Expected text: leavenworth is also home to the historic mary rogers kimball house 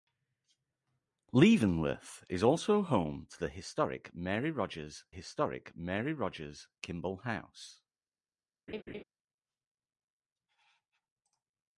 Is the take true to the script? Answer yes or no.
no